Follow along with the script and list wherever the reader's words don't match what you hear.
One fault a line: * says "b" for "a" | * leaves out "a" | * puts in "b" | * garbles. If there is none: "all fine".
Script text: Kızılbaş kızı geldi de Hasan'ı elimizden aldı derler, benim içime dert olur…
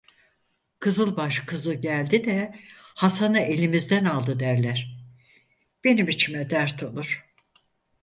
all fine